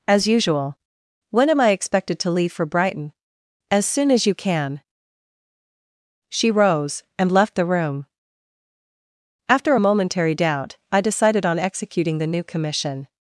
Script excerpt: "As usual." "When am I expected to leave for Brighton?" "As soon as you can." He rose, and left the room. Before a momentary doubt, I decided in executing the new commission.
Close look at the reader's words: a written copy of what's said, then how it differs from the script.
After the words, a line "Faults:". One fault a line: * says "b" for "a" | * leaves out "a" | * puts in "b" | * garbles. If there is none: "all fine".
"As usual." "When am I expected to leave for Brighton?" "As soon as you can." She rose, and left the room. After a momentary doubt, I decided on executing the new commission.
Faults:
* says "She" for "He"
* says "After" for "Before"
* says "on" for "in"